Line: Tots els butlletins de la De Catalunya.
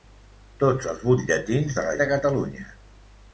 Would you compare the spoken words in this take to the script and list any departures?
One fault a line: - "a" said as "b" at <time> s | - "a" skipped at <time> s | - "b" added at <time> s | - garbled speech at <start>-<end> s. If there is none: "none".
none